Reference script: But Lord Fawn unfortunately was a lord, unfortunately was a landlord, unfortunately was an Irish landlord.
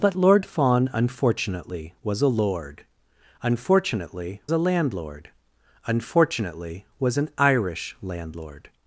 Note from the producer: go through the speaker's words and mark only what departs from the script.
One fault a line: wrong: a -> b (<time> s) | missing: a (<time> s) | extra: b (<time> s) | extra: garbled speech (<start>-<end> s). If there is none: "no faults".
missing: was (4.4 s)